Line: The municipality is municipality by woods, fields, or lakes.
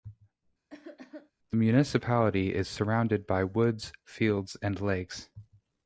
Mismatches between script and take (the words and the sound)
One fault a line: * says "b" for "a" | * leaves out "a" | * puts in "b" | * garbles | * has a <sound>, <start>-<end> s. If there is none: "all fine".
* has a cough, 0.7-1.3 s
* says "surrounded" for "municipality"
* says "and" for "or"